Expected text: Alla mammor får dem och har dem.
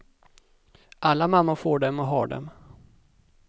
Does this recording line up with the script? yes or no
yes